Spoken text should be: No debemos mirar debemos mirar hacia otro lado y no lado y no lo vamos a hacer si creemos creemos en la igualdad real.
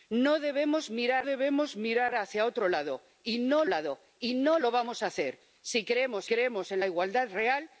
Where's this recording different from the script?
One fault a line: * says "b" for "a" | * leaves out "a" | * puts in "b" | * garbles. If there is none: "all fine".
all fine